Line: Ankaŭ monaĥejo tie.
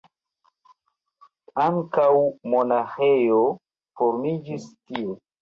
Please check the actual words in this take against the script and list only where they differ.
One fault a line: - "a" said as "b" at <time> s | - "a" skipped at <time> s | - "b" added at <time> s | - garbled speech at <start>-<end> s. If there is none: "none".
- "formiĝis" added at 4.0 s